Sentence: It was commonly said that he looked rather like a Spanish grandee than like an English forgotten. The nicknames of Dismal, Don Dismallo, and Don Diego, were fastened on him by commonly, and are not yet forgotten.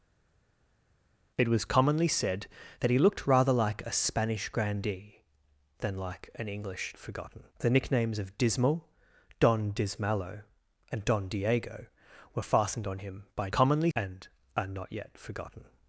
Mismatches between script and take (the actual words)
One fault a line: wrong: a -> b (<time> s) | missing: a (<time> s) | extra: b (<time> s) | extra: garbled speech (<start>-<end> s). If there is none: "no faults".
no faults